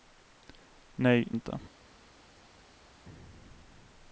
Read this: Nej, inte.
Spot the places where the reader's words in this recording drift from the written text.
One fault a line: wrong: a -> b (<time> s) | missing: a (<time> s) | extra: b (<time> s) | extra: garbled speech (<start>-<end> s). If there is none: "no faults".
no faults